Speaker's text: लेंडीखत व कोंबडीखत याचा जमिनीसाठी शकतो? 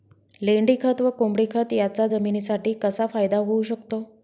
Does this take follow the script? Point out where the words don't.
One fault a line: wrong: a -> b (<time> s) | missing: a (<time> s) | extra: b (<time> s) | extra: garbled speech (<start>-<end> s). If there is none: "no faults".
extra: कसा फायदा होऊ (2.8 s)